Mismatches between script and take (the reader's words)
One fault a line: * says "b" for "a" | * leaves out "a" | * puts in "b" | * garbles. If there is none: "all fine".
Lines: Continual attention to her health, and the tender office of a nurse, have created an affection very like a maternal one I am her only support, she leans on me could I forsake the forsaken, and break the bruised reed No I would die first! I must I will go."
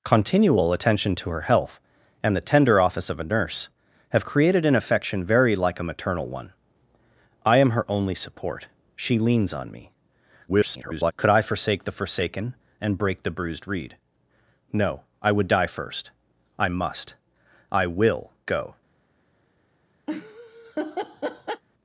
* garbles